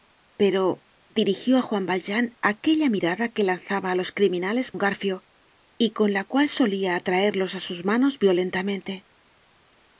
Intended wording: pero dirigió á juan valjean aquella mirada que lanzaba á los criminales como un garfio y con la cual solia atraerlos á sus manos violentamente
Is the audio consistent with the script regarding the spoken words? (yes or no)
no